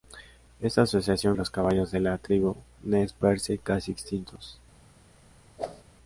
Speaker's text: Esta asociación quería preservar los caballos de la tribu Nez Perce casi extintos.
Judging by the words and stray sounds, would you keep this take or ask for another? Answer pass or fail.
fail